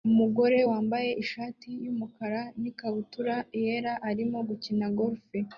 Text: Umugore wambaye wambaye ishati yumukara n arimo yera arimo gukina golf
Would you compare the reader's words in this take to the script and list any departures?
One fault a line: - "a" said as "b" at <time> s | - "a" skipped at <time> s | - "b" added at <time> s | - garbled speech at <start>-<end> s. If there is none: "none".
- "wambaye" skipped at 1.1 s
- "arimo" said as "ikabutura" at 2.7 s